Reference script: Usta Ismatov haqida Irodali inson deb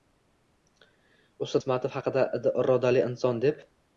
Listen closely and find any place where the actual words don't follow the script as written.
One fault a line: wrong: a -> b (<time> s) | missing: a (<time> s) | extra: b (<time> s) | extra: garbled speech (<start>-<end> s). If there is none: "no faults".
no faults